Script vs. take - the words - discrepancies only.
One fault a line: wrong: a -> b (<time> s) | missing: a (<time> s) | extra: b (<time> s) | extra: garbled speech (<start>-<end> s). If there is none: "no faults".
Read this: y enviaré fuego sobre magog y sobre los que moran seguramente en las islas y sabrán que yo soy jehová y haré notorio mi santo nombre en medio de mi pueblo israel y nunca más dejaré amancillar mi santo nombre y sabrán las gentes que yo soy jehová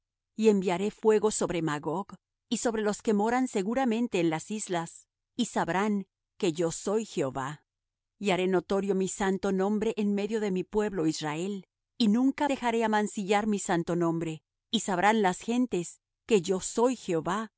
missing: más (12.5 s)